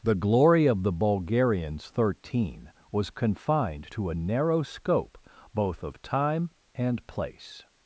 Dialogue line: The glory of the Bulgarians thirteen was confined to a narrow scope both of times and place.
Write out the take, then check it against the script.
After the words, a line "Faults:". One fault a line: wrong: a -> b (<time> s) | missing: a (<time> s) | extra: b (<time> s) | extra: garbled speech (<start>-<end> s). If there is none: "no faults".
The glory of the Bulgarians thirteen was confined to a narrow scope both of time and place.
Faults:
wrong: times -> time (6.0 s)